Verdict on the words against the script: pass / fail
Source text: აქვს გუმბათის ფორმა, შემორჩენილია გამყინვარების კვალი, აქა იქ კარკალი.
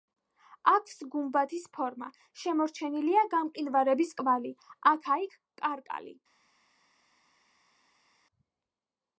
pass